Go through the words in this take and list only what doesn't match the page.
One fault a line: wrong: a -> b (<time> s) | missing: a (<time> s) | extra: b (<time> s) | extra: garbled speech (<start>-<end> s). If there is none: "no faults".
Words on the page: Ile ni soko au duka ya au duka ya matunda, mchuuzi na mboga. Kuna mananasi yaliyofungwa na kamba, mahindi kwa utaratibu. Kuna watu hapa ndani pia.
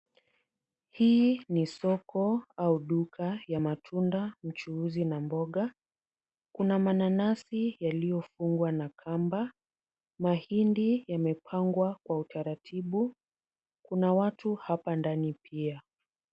wrong: Ile -> Hii (0.9 s)
missing: au duka ya (3.6 s)
extra: yamepangwa (11.1 s)